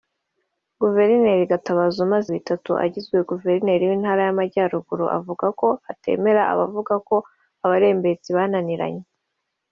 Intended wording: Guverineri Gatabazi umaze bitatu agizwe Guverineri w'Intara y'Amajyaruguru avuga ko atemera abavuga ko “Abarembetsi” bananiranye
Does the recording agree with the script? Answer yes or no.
yes